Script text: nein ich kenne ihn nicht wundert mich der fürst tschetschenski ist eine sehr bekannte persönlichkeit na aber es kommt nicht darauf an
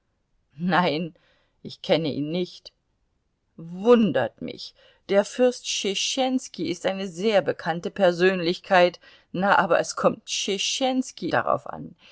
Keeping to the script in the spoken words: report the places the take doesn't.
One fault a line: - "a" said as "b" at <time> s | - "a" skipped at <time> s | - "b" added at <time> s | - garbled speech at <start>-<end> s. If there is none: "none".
- "nicht" said as "tschetschenski" at 10.3 s